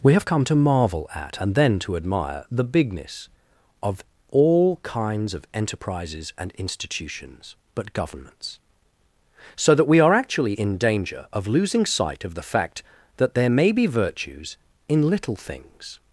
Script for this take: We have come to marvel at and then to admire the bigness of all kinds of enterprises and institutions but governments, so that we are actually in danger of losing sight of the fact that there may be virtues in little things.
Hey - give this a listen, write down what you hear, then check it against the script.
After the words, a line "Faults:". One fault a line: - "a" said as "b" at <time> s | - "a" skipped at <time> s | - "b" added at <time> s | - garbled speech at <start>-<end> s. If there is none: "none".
We have come to marvel at and then to admire the bigness of all kinds of enterprises and institutions but governments, so that we are actually in danger of losing sight of the fact that there may be virtues in little things.
Faults:
none